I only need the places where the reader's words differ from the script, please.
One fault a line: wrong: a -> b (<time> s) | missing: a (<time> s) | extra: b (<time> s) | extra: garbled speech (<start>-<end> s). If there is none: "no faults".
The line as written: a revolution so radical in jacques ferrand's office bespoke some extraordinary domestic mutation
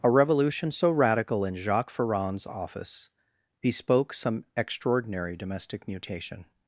no faults